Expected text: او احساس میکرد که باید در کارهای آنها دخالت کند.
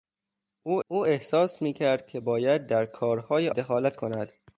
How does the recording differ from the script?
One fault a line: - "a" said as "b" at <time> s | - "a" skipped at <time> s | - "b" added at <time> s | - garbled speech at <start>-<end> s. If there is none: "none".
- "او" added at 0.9 s
- "آنها" skipped at 3.5 s